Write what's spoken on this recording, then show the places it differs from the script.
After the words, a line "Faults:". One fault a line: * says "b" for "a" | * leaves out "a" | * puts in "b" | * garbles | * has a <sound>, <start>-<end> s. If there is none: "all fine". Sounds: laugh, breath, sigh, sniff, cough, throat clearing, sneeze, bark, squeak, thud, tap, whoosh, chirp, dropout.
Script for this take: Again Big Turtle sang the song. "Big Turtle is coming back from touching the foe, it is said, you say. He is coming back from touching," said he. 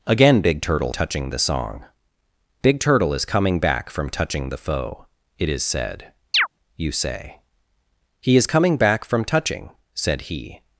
Again Big Turtle touching the song. "Big Turtle is coming back from touching the foe, it is said, you say. He is coming back from touching," said he.
Faults:
* says "touching" for "sang"
* has a chirp, 6.3-6.5 s